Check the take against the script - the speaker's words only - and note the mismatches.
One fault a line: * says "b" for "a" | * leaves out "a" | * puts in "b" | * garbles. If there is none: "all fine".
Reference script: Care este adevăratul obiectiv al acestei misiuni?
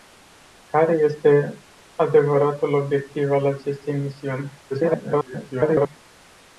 * garbles